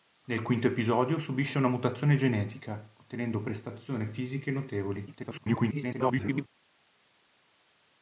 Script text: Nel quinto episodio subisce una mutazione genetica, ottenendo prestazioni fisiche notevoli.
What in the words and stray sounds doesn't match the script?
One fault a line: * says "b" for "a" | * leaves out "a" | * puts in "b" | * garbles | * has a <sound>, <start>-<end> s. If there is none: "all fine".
* garbles